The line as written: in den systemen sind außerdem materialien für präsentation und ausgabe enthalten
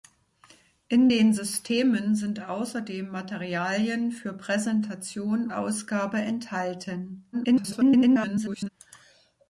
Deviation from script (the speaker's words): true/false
true